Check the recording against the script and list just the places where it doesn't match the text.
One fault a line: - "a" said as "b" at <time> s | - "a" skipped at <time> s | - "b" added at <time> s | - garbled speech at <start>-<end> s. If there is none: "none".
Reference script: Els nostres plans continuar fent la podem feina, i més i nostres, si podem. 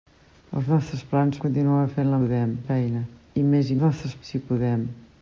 none